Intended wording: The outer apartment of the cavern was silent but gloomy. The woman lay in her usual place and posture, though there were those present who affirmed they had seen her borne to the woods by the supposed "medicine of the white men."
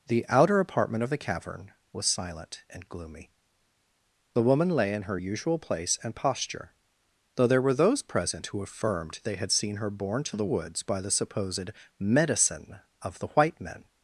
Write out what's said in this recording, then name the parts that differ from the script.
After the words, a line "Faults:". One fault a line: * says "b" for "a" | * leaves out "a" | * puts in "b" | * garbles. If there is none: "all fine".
The outer apartment of the cavern was silent and gloomy. The woman lay in her usual place and posture, though there were those present who affirmed they had seen her borne to the woods by the supposed "medicine of the white men."
Faults:
* says "and" for "but"